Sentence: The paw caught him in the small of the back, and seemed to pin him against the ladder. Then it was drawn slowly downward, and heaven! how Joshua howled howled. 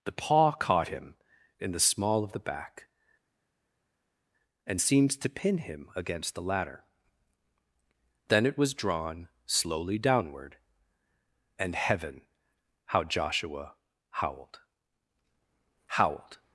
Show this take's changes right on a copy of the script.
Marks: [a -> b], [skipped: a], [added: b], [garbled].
The paw caught him in the small of the back, and seemed to pin him against the ladder. Then it was drawn slowly downward, and heaven! how Joshua howled howled.